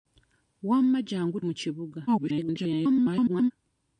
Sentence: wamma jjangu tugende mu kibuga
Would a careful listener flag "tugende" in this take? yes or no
yes